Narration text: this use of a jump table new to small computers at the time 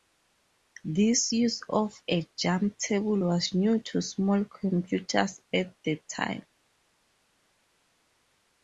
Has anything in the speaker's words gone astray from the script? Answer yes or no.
yes